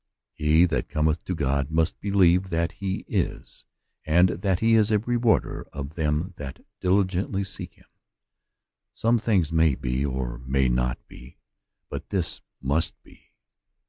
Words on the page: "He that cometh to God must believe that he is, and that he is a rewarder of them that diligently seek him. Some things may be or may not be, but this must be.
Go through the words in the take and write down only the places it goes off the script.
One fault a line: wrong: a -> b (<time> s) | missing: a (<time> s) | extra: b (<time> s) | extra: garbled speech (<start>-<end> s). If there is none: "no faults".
no faults